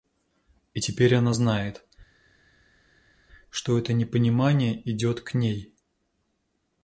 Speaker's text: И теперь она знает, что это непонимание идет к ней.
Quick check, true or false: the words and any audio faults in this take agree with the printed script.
true